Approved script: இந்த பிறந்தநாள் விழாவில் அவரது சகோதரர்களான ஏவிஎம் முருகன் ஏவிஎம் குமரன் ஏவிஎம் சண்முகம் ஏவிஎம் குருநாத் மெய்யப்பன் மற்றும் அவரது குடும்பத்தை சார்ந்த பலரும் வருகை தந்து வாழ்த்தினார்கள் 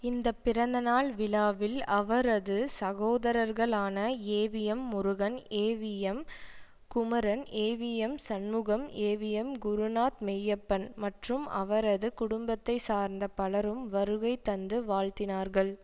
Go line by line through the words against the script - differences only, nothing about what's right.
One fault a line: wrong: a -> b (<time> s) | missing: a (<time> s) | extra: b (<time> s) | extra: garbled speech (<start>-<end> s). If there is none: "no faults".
no faults